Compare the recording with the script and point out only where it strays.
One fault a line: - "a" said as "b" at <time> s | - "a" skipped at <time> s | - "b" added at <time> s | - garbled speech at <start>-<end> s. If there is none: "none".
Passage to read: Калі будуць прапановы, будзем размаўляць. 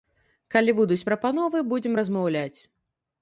none